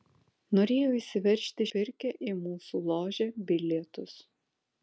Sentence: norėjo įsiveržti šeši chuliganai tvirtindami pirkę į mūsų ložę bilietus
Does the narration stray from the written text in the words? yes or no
yes